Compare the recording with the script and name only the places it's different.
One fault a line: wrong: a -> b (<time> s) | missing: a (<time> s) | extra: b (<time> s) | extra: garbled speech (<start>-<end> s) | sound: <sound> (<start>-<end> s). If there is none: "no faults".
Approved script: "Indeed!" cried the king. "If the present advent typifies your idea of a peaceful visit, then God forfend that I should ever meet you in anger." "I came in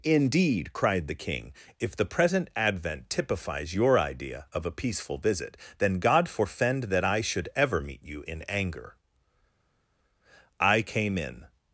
no faults